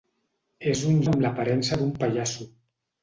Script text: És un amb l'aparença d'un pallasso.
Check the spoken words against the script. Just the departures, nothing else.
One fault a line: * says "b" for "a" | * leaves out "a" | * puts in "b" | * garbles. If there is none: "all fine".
all fine